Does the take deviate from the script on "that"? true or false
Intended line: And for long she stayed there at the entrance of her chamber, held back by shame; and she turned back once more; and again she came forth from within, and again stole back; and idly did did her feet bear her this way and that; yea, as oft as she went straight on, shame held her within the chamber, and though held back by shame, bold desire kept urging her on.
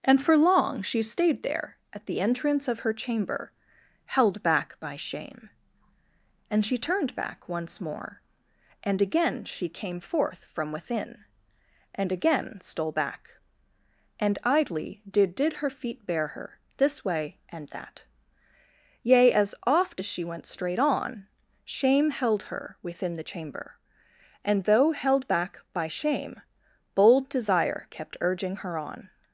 false